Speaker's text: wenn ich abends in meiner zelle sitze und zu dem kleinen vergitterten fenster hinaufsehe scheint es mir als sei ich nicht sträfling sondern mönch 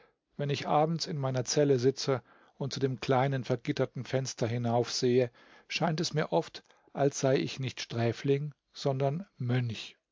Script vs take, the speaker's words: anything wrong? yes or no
yes